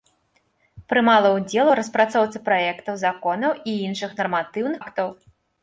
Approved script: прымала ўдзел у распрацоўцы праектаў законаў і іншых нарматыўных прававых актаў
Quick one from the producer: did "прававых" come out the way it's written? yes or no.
no